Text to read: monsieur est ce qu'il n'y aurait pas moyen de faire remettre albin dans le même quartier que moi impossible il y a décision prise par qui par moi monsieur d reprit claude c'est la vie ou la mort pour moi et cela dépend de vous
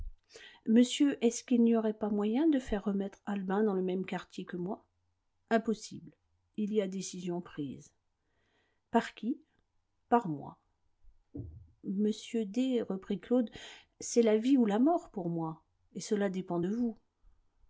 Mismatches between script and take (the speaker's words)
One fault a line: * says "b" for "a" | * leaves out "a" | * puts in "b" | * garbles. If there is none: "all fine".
all fine